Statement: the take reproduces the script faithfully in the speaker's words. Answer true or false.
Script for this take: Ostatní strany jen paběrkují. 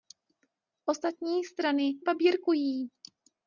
false